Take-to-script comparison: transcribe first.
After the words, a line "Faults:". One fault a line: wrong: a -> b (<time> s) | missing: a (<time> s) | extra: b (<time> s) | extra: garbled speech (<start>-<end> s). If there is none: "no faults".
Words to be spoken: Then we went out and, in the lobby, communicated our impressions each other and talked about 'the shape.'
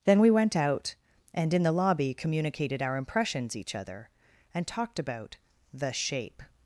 Then we went out and, in the lobby, communicated our impressions each other and talked about 'the shape.'
Faults:
no faults